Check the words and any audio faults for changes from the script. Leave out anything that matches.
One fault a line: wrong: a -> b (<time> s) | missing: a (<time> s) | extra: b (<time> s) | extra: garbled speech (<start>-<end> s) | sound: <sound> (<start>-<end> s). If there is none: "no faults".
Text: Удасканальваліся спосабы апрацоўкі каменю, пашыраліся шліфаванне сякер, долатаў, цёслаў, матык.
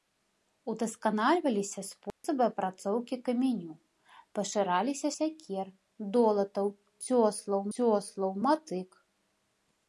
sound: dropout (2.1-2.2 s)
missing: шліфаванне (5.1 s)
extra: цёслаў (7.8 s)